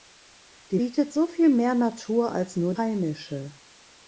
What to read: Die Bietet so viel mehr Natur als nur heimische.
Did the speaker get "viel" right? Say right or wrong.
right